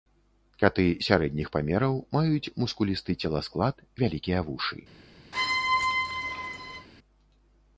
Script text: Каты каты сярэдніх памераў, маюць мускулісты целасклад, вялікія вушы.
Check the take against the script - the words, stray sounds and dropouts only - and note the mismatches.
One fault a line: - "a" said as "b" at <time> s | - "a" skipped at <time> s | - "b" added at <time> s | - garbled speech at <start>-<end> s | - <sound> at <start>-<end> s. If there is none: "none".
- "каты" skipped at 0.8 s
- squeak at 5.3-6.9 s